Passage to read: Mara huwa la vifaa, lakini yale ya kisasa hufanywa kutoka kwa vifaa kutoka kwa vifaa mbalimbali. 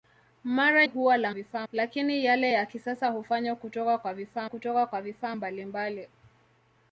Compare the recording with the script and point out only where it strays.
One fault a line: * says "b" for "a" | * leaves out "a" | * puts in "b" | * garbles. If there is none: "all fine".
all fine